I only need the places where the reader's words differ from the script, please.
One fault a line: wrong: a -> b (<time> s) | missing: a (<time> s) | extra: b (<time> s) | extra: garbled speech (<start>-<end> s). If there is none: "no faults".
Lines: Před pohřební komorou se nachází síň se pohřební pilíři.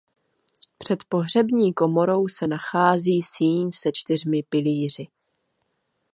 wrong: pohřební -> čtyřmi (3.9 s)